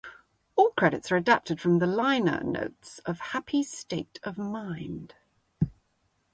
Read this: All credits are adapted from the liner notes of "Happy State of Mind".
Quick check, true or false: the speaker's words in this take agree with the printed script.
true